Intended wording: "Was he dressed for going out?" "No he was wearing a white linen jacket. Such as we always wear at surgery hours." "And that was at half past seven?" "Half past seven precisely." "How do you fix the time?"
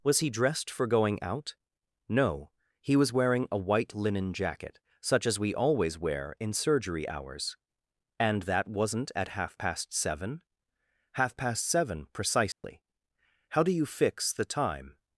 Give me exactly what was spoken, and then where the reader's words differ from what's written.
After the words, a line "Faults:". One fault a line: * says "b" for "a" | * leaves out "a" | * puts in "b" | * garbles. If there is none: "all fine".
"Was he dressed for going out?" "No he was wearing a white linen jacket. Such as we always wear in surgery hours." "And that wasn't at half past seven?" "Half past seven precisely." "How do you fix the time?"
Faults:
* says "in" for "at"
* says "wasn't" for "was"